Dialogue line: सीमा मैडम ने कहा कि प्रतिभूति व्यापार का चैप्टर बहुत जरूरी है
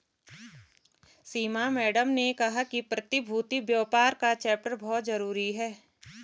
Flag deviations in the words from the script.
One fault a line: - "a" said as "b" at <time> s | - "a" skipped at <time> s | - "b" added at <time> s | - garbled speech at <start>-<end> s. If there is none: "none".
none